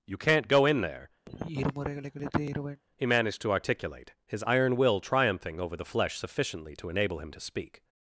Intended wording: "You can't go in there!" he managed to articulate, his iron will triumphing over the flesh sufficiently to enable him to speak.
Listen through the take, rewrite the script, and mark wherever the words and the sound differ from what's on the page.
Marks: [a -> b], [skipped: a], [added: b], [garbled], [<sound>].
"You can't go in there!" [sigh] he managed to articulate, his iron will triumphing over the flesh sufficiently to enable him to speak.